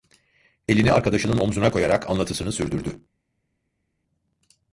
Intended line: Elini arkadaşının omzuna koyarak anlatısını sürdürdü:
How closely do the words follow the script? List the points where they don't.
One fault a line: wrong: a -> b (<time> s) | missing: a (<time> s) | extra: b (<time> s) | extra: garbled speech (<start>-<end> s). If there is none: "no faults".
no faults